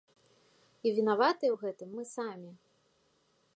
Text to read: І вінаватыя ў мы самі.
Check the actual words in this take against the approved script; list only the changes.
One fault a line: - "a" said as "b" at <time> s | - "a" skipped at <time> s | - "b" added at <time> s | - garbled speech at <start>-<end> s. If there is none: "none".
- "гэтым" added at 1.6 s